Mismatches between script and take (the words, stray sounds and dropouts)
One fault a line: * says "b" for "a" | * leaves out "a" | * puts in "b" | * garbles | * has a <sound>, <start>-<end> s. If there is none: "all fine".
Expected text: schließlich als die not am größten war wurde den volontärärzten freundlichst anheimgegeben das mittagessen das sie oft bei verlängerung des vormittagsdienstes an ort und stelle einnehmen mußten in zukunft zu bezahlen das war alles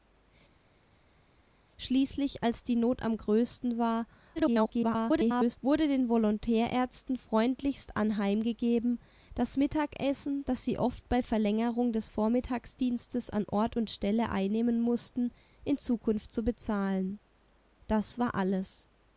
* garbles